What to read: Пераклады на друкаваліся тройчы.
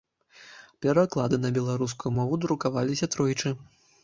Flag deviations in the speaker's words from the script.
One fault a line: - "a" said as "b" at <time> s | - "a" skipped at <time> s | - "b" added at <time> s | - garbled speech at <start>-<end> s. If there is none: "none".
- "беларускую мову" added at 1.6 s